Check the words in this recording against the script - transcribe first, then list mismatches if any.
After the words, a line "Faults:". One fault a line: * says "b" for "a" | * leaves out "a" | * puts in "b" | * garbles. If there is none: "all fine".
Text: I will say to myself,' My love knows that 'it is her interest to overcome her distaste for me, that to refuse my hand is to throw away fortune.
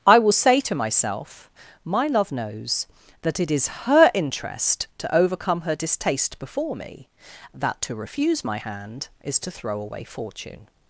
I will say to myself,' My love knows that 'it is her interest to overcome her distaste before me, that to refuse my hand is to throw away fortune.
Faults:
* says "before" for "for"